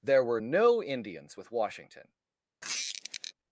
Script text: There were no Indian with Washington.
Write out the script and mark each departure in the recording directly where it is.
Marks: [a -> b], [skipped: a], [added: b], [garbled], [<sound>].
There were no [Indian -> Indians] with Washington. [squeak]